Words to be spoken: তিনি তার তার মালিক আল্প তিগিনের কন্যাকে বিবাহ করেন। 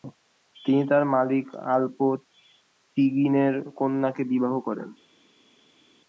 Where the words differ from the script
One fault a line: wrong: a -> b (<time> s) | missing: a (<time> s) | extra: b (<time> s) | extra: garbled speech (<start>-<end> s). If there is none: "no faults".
missing: তার (1.0 s)